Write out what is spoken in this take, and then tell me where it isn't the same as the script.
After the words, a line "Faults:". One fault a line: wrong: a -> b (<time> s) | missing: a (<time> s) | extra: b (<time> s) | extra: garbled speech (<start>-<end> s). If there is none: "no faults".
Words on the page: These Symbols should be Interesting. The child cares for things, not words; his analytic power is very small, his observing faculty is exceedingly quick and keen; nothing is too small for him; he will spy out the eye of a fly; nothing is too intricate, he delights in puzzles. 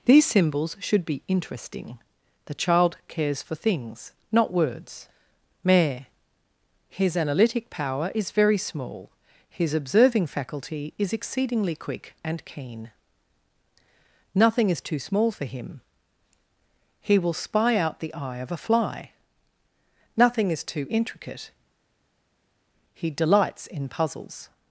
These Symbols should be Interesting. The child cares for things, not words; mare his analytic power is very small, his observing faculty is exceedingly quick and keen; nothing is too small for him; he will spy out the eye of a fly; nothing is too intricate, he delights in puzzles.
Faults:
extra: mare (5.6 s)